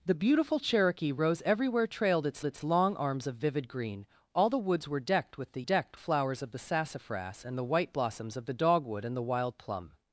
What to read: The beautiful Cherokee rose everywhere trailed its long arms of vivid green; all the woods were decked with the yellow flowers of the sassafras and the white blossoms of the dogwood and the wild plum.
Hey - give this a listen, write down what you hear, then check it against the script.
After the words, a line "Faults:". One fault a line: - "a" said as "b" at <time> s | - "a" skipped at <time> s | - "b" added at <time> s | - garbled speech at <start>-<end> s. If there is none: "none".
The beautiful Cherokee rose everywhere trailed its its long arms of vivid green; all the woods were decked with the decked flowers of the sassafras and the white blossoms of the dogwood and the wild plum.
Faults:
- "its" added at 2.4 s
- "yellow" said as "decked" at 5.6 s